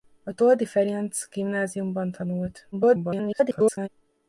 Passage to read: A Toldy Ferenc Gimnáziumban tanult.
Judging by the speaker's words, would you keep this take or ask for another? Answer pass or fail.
fail